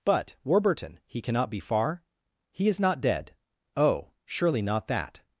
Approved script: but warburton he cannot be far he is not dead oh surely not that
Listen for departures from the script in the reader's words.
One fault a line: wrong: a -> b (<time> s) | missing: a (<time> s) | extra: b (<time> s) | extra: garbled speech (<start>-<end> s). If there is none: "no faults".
no faults